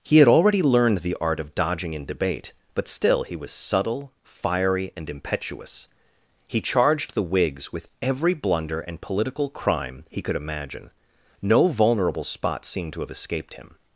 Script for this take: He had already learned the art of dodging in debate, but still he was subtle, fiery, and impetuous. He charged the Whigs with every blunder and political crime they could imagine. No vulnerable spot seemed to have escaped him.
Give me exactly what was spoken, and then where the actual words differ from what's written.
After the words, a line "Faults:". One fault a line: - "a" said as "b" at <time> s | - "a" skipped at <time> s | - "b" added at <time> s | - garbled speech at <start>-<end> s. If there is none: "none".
He had already learned the art of dodging in debate, but still he was subtle, fiery, and impetuous. He charged the Whigs with every blunder and political crime he could imagine. No vulnerable spot seemed to have escaped him.
Faults:
- "they" said as "he" at 10.1 s